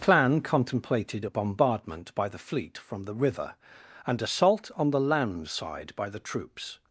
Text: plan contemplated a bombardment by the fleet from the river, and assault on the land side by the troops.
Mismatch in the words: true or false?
false